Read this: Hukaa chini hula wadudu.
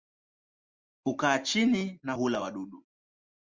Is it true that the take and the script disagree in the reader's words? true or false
true